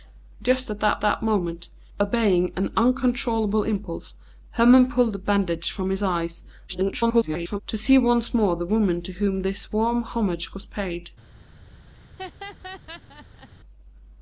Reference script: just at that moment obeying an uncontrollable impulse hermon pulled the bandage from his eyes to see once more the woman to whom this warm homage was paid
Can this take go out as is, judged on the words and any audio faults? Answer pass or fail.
fail